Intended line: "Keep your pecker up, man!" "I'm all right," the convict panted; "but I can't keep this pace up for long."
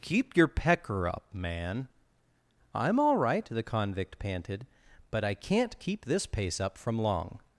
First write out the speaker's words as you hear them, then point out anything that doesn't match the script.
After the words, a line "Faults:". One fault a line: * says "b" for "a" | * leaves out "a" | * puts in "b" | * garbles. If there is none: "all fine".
"Keep your pecker up, man!" "I'm all right," the convict panted; "but I can't keep this pace up from long."
Faults:
* says "from" for "for"